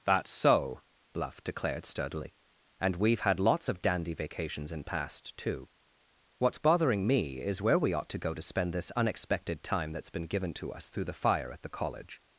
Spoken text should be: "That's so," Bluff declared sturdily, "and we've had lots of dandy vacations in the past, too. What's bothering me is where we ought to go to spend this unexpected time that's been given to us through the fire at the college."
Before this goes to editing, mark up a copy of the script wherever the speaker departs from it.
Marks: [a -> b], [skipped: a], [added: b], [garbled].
"That's so," Bluff declared sturdily, "and we've had lots of dandy vacations in [skipped: the] past, too. What's bothering me is where we ought to go to spend this unexpected time that's been given to us through the fire at the college."